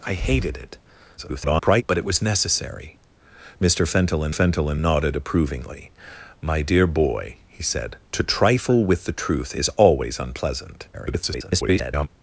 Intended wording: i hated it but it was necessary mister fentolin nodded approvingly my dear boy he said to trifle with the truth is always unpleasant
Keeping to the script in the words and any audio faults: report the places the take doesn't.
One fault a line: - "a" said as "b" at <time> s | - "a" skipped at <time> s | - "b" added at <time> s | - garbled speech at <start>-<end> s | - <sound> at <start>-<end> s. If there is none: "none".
- garbled speech at 1.2-1.8 s
- "fentolin" added at 4.3 s
- garbled speech at 10.9-12.1 s